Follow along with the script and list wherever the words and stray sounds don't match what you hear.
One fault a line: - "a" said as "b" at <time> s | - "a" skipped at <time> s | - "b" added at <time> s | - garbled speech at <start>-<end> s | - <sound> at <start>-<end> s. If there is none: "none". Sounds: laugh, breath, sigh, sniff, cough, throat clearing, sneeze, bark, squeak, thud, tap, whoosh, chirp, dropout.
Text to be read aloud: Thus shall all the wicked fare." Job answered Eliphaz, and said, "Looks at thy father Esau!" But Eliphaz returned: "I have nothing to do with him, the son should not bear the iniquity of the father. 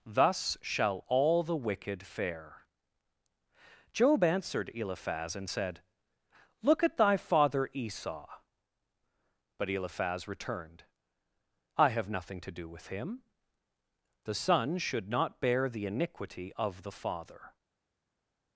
- "Looks" said as "Look" at 6.6 s